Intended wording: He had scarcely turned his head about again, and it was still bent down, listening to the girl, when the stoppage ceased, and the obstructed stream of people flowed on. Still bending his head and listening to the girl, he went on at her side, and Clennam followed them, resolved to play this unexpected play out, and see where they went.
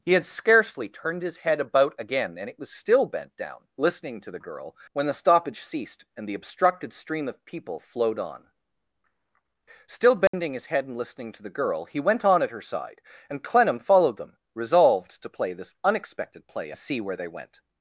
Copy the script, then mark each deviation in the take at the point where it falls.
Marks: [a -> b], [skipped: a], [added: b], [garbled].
He had scarcely turned his head about again, and it was still bent down, listening to the girl, when the stoppage ceased, and the obstructed stream of people flowed on. Still bending his head and listening to the girl, he went on at her side, and Clennam followed them, resolved to play this unexpected play [skipped: out, and] see where they went.